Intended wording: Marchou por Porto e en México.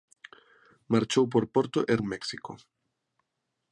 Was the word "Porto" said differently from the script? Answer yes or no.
no